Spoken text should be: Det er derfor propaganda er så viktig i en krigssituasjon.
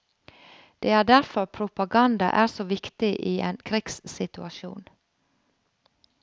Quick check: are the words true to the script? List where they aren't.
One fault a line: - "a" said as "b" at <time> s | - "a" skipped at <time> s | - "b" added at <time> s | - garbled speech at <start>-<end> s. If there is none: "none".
none